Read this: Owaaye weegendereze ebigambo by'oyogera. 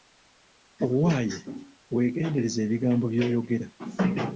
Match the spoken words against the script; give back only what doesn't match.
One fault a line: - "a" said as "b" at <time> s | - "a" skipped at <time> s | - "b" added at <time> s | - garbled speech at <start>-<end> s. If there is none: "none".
none